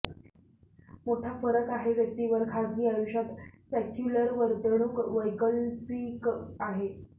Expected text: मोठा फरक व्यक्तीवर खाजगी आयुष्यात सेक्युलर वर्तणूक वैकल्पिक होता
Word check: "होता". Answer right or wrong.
wrong